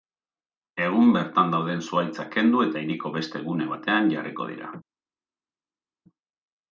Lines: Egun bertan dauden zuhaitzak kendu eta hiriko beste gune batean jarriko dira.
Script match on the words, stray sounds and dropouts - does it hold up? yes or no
yes